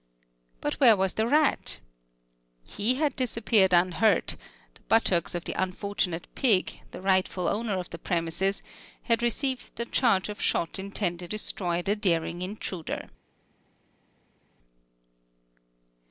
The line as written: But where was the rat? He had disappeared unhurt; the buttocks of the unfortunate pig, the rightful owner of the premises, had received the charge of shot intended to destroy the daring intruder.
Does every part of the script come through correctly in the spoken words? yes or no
no